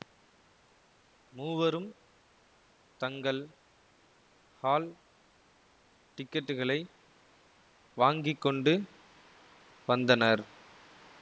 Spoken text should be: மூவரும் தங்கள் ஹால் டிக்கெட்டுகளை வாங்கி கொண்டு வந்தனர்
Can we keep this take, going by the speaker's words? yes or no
yes